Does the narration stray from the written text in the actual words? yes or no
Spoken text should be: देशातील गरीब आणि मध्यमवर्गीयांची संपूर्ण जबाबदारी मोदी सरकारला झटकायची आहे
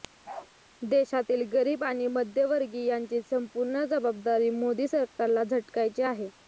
no